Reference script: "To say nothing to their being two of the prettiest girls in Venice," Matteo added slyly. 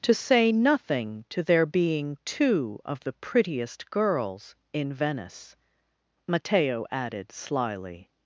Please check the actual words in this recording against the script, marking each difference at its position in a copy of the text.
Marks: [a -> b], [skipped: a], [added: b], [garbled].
"To say nothing to their being two of the prettiest girls in Venice," Matteo added slyly.